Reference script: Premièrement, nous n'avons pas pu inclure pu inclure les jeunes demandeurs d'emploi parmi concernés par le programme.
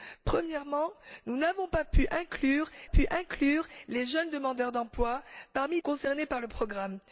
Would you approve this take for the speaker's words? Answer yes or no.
yes